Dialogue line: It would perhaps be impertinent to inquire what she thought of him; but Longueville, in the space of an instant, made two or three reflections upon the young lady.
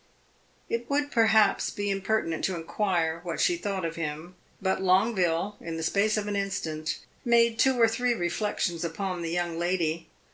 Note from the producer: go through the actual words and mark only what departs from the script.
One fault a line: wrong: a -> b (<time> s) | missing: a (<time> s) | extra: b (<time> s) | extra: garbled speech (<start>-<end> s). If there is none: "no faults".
no faults